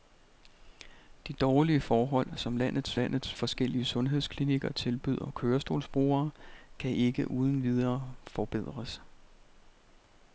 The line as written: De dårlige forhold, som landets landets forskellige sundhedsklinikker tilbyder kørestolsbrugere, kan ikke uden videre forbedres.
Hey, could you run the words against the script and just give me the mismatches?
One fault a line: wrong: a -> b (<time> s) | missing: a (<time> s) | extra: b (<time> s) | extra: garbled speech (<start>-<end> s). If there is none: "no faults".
no faults